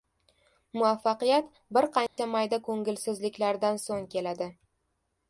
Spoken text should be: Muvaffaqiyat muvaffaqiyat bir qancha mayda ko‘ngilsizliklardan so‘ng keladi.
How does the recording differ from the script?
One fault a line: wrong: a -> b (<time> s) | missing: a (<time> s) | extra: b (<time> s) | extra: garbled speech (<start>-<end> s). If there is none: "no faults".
missing: muvaffaqiyat (1.5 s)